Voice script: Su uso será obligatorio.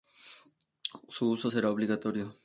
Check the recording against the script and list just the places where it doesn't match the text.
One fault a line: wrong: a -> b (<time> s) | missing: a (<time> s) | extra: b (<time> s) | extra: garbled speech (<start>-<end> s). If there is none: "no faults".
no faults